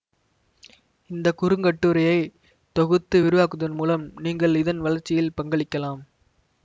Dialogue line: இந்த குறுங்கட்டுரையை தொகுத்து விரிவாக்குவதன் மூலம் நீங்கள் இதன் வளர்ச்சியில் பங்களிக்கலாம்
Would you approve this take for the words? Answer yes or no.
yes